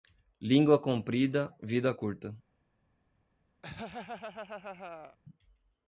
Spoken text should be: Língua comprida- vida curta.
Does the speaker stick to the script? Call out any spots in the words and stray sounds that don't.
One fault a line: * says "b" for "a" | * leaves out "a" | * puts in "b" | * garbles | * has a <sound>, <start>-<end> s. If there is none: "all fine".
* has a laugh, 3.6-5.2 s